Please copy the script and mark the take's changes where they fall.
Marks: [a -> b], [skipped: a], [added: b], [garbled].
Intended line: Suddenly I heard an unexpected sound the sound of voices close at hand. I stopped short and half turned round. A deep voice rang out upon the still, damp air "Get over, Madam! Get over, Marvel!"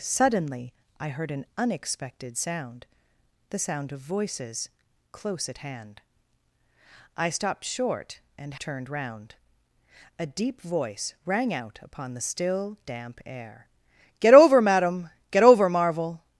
Suddenly I heard an unexpected sound the sound of voices close at hand. I stopped short and [skipped: half] turned round. A deep voice rang out upon the still, damp air "Get over, Madam! Get over, Marvel!"